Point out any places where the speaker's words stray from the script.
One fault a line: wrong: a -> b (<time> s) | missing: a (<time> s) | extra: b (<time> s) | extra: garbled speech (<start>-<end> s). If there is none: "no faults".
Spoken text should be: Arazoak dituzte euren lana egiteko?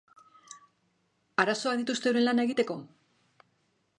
no faults